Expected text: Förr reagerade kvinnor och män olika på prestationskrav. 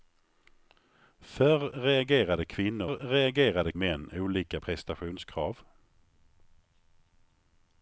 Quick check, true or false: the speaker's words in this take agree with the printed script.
false